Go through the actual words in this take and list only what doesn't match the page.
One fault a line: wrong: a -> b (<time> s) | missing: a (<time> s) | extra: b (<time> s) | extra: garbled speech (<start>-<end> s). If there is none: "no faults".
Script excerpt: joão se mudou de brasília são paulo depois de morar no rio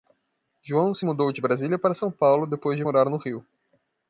extra: para (1.8 s)